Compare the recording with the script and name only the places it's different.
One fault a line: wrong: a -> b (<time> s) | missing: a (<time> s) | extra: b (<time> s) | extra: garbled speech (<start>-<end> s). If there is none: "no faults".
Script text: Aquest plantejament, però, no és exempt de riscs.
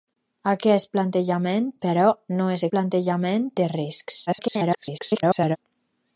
wrong: exempt -> plantejament (2.7 s)
extra: garbled speech (4.3-5.6 s)